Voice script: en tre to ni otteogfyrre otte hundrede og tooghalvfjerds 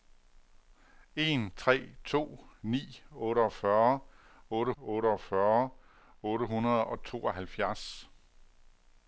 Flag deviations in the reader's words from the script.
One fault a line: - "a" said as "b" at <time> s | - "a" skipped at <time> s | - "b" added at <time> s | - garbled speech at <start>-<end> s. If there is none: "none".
- "otteogfyrre otte" added at 4.8 s